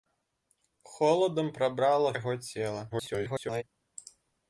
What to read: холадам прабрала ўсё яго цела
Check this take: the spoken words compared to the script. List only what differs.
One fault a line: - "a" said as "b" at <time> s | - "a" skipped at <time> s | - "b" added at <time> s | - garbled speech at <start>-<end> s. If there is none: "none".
- "ўсё" skipped at 2.1 s
- garbled speech at 2.9-3.6 s